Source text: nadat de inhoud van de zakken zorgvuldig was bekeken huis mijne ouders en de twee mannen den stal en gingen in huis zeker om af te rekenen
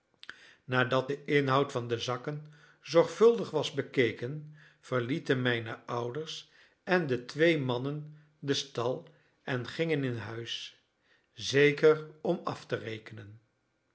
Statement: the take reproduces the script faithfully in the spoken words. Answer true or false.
false